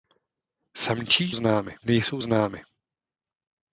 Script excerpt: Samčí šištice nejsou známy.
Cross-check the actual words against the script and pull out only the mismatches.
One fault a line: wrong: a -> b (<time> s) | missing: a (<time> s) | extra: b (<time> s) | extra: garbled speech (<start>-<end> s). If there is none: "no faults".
wrong: šištice -> známy (1.3 s)